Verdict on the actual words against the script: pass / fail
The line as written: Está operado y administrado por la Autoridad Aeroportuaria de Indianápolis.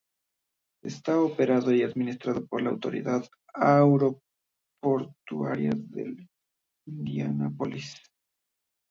pass